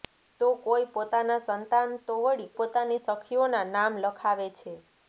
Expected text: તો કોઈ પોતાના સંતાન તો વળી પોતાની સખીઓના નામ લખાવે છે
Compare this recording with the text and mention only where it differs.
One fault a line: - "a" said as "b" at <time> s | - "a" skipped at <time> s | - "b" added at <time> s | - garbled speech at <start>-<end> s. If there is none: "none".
none